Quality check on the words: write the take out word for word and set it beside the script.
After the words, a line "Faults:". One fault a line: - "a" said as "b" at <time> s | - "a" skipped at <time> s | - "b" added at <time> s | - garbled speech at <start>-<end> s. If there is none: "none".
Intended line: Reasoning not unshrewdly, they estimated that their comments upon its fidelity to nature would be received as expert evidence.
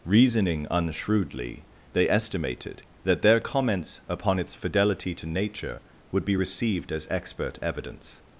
Reasoning unshrewdly, they estimated that their comments upon its fidelity to nature would be received as expert evidence.
Faults:
- "not" skipped at 0.7 s